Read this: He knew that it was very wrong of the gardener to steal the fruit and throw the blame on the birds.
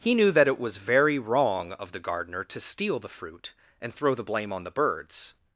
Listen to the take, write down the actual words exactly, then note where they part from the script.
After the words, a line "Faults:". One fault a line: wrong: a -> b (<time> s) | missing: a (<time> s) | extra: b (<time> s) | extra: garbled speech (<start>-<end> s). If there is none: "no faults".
He knew that it was very wrong of the gardener to steal the fruit and throw the blame on the birds.
Faults:
no faults